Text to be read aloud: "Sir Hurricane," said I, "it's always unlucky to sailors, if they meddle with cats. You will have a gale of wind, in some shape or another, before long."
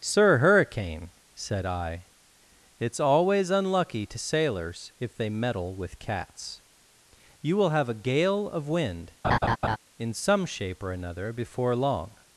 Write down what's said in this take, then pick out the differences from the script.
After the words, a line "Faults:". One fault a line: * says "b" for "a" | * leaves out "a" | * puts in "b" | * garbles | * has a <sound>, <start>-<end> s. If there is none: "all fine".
"Sir Hurricane," said I, "it's always unlucky to sailors, if they meddle with cats. You will have a gale of wind, in some shape or another, before long."
Faults:
* has a laugh, 9.2-9.8 s